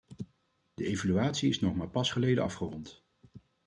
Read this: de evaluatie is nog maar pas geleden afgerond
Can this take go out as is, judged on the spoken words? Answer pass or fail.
pass